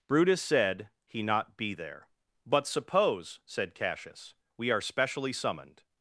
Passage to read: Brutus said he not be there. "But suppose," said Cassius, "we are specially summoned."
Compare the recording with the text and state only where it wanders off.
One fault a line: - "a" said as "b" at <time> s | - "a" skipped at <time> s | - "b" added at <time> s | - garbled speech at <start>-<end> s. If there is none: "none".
none